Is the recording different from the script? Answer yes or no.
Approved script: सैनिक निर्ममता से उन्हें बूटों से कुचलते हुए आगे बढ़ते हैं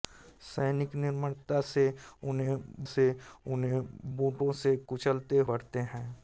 yes